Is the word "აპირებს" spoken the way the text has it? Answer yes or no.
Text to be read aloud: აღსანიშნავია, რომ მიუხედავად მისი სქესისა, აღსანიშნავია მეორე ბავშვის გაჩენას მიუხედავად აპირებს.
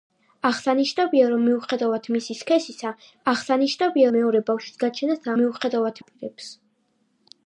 yes